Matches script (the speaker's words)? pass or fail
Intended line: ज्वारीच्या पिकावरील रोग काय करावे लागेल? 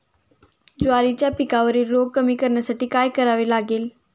fail